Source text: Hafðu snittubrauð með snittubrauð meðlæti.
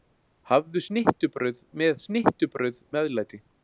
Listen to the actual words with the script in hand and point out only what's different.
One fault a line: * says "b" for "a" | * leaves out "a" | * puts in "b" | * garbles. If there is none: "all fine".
all fine